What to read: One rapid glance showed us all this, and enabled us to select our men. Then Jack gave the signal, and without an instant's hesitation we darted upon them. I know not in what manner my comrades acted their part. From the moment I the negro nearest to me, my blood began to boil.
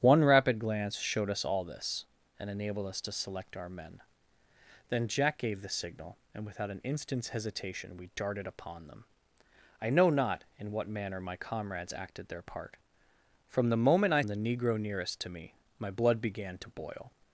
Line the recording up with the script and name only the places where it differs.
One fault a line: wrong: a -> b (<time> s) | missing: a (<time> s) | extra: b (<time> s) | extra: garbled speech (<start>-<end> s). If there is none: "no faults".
no faults